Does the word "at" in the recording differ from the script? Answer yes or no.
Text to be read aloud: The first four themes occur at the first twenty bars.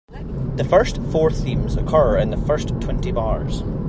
yes